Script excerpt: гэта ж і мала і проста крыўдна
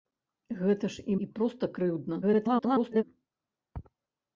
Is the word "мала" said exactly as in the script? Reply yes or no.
no